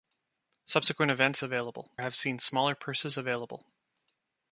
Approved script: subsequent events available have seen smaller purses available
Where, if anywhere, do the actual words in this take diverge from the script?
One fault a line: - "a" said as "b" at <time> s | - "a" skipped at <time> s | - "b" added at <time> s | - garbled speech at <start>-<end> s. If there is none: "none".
none